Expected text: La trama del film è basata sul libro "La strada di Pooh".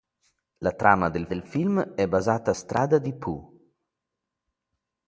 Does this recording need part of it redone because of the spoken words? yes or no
yes